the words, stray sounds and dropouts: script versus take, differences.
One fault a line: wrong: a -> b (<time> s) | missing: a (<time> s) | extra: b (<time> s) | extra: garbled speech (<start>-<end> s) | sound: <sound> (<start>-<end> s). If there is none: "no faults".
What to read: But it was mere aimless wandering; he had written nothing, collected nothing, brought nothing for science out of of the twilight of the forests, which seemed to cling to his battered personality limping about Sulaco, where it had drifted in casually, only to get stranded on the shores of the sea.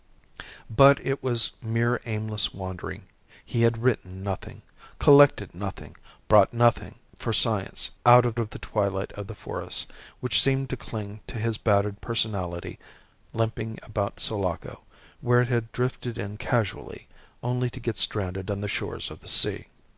no faults